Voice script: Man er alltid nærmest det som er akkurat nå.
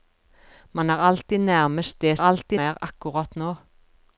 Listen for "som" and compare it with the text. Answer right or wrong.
wrong